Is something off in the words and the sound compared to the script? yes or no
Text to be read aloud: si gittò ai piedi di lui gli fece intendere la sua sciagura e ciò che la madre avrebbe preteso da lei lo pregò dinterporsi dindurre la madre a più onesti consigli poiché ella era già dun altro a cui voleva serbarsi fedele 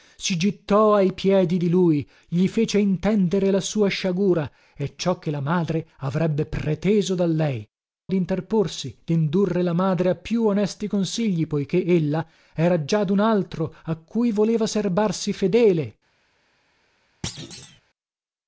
yes